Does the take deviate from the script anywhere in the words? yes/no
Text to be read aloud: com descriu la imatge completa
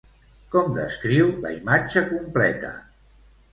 no